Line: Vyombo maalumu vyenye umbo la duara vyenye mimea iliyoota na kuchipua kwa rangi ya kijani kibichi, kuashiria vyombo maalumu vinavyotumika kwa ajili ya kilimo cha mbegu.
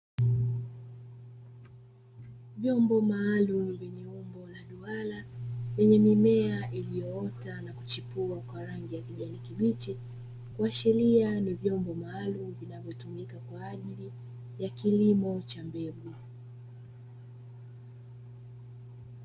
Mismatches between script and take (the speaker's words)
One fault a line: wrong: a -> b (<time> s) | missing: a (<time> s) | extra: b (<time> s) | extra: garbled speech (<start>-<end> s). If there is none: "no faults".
extra: ni (11.4 s)